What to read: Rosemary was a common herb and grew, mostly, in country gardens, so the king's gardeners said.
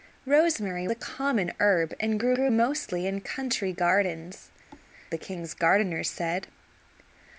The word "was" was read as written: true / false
false